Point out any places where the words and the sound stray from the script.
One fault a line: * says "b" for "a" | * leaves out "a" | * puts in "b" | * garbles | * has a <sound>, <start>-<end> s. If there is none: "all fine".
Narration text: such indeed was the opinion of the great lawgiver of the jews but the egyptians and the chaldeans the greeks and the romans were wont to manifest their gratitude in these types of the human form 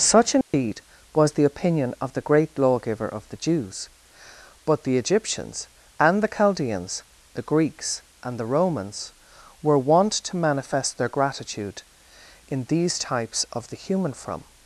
* has a dropout, 0.4-0.5 s
* says "from" for "form"